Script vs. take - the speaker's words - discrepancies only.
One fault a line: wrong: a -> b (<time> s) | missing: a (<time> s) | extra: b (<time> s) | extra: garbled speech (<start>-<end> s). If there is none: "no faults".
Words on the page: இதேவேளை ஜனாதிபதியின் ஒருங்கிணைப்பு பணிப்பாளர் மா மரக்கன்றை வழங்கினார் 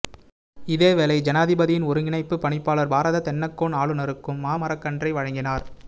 extra: பாரத தென்னக்கோன் ஆளுநருக்கும் (2.9 s)